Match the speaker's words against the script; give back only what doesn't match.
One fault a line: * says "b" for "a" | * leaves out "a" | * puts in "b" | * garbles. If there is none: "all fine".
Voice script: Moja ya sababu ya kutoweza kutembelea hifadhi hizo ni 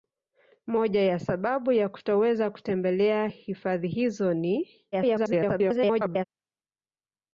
* garbles